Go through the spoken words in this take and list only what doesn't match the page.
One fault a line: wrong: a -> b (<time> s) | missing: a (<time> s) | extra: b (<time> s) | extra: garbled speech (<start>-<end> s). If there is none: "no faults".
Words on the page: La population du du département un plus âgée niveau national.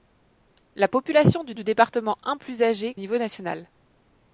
no faults